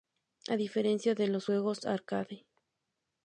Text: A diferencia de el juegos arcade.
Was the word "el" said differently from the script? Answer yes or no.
yes